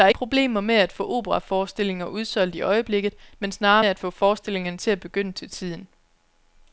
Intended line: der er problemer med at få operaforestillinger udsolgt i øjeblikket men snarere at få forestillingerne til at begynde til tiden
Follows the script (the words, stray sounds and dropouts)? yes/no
yes